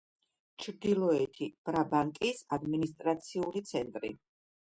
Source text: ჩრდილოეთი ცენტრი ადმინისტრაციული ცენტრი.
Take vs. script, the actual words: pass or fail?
fail